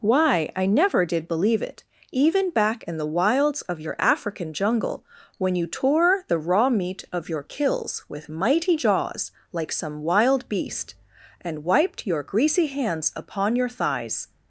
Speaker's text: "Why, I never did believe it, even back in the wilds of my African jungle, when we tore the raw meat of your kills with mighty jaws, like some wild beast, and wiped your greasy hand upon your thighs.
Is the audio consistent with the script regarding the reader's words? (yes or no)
no